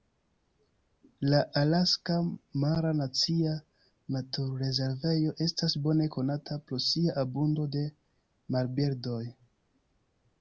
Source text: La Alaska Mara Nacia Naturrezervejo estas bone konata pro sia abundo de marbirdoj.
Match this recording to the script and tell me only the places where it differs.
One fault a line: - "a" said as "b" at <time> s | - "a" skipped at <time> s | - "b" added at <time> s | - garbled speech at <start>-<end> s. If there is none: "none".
none